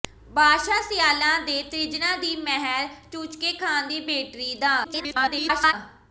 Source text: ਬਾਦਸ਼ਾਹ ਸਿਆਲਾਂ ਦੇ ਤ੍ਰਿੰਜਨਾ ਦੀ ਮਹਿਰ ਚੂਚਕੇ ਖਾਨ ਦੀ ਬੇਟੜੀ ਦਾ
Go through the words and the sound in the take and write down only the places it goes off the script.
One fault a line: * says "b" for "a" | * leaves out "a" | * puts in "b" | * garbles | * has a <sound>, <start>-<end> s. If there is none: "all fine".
* garbles